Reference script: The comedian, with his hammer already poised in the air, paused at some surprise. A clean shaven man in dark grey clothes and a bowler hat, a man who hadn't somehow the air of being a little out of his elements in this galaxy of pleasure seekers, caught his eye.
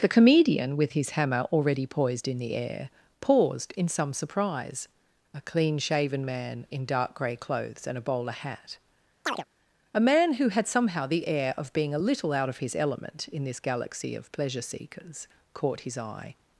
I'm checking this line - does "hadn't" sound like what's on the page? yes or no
no